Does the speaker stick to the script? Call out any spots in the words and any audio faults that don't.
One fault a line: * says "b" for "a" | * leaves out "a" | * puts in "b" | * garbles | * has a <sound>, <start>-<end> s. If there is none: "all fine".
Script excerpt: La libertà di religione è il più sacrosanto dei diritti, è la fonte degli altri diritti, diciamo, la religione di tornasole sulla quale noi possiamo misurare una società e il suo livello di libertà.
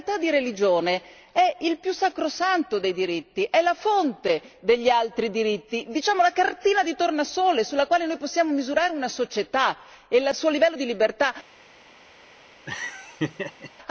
* says "cartina" for "religione"
* has a laugh, 12.7-13.7 s